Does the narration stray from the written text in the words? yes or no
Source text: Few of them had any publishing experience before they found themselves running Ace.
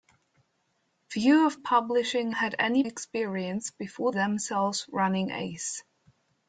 yes